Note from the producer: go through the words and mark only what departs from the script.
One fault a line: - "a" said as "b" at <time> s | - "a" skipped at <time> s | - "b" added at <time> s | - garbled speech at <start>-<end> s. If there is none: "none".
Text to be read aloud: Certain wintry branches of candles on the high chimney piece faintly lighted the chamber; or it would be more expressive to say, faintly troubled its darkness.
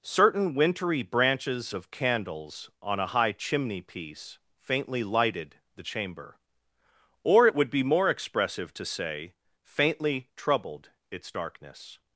- "the" said as "a" at 3.0 s